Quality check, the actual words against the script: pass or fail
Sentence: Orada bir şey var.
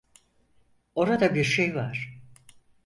pass